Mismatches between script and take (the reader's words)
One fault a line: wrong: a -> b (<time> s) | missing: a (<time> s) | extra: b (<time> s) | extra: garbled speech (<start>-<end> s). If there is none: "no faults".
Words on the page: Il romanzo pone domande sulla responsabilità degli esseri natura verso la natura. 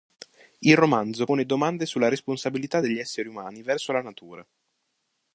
wrong: natura -> umani (3.3 s)